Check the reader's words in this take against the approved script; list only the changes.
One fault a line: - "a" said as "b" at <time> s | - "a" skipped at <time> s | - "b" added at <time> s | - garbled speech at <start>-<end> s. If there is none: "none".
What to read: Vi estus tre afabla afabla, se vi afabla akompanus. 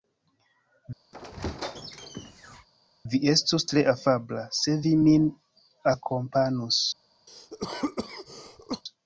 - "afabla" skipped at 4.5 s
- "afabla" said as "min" at 5.0 s